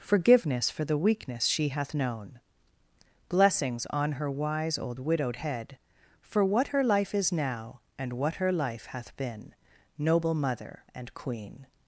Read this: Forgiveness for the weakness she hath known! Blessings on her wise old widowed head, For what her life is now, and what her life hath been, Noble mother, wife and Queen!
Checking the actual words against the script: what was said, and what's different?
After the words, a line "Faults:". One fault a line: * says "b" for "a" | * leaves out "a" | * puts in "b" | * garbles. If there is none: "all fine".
Forgiveness for the weakness she hath known! Blessings on her wise old widowed head, For what her life is now, and what her life hath been, Noble mother, and Queen!
Faults:
* leaves out "wife"